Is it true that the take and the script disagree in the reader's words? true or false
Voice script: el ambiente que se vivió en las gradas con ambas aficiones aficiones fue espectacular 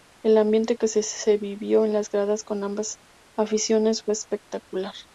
true